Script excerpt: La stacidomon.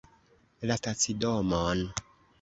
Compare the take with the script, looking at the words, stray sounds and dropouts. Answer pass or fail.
pass